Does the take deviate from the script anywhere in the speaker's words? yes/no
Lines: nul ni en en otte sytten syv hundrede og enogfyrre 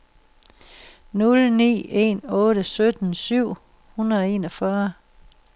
yes